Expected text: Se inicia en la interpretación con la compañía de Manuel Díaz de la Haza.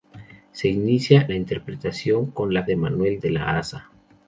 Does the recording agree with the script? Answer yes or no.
no